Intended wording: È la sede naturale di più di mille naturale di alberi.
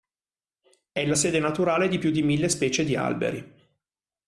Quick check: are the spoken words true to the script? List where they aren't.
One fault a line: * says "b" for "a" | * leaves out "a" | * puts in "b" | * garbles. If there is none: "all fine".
* says "specie" for "naturale"